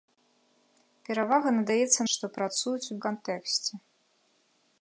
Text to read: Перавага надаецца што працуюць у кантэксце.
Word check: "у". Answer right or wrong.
right